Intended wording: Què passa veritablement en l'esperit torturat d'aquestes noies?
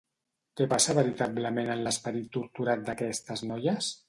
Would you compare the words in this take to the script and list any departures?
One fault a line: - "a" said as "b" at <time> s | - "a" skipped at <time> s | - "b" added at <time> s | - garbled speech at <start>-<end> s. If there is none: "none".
none